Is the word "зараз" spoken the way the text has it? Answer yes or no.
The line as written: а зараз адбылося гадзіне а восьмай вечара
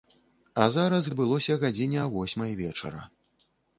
yes